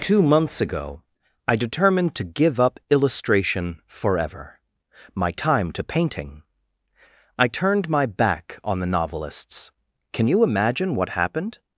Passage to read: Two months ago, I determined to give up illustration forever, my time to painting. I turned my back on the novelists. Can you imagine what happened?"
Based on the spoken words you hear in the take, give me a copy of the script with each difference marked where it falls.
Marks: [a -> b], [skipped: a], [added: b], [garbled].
Two months ago, I determined to give up illustration forever, my time to painting. I turned my back on the novelists. Can you imagine what happened?"